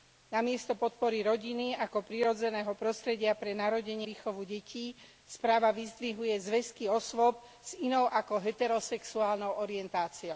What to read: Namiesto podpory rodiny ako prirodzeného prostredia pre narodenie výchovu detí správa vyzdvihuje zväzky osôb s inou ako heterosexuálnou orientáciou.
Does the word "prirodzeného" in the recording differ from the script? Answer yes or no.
no